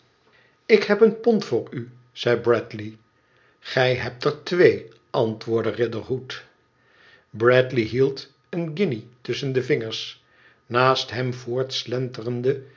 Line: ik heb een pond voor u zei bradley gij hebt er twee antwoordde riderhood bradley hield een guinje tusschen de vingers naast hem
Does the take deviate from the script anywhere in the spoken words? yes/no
no